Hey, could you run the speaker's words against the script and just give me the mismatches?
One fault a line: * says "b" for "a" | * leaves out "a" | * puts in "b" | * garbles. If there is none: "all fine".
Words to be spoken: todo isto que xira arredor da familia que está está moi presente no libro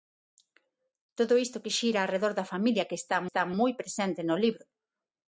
all fine